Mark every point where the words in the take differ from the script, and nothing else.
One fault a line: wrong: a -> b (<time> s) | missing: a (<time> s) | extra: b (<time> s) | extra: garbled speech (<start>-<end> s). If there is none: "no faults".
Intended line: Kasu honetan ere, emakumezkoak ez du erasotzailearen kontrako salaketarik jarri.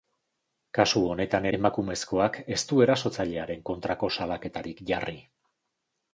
missing: ere (1.5 s)